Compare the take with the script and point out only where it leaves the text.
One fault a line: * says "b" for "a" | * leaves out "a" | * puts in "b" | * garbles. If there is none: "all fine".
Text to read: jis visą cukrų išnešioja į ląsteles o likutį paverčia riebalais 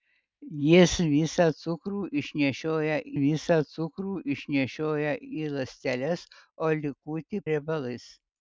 * puts in "visą cukrų išnešioja"
* leaves out "paverčia"